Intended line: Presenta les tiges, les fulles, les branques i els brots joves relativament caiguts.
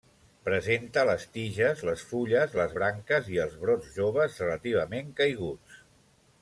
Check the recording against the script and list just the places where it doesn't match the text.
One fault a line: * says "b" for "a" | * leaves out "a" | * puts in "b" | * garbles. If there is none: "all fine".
all fine